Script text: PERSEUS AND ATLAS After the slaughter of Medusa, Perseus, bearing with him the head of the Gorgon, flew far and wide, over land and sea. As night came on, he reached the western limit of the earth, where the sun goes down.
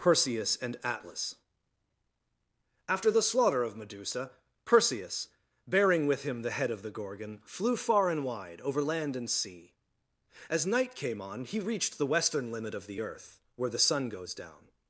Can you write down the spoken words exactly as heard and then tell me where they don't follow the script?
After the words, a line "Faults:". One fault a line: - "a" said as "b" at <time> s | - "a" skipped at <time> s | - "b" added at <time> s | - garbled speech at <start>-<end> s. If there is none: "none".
PERSEUS AND ATLAS After the slaughter of Medusa, Perseus, bearing with him the head of the Gorgon, flew far and wide, over land and sea. As night came on, he reached the western limit of the earth, where the sun goes down.
Faults:
none